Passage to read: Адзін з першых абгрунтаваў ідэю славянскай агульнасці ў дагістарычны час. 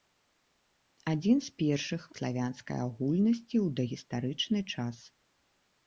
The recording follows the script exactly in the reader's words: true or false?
false